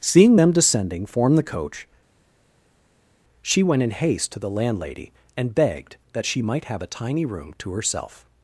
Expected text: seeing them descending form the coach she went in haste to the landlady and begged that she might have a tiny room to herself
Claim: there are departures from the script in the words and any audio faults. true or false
false